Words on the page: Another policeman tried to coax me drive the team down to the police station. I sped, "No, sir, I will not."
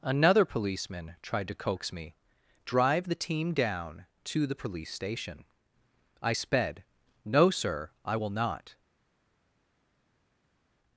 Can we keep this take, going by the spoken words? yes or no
yes